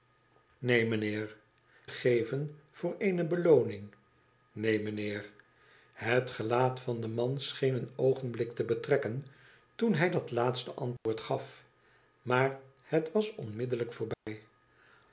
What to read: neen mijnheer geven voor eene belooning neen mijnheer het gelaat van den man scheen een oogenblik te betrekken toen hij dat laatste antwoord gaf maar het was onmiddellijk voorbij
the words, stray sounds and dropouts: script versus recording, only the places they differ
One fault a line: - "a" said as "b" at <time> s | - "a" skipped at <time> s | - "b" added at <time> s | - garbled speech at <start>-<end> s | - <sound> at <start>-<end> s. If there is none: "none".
- dropout at 11.0-11.1 s
- dropout at 14.1-14.3 s